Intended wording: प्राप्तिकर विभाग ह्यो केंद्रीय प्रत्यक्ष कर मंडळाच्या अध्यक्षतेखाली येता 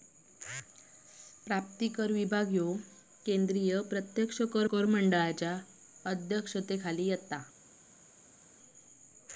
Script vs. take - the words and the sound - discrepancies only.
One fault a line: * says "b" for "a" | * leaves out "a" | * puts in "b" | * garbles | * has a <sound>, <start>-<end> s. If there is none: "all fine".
* puts in "कर"